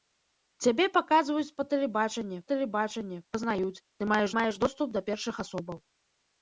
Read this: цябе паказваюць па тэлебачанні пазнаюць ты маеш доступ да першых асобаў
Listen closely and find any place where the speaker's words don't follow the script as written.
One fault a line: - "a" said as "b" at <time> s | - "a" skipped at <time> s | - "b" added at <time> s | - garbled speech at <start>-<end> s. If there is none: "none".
- "тэлебачанні" added at 2.5 s
- "маеш" added at 4.4 s